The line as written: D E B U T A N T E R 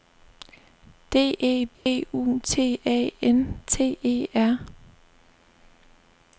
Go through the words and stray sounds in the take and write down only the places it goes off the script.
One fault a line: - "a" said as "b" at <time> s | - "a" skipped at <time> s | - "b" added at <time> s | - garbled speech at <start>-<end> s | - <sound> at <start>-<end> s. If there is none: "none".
- dropout at 1.7-1.9 s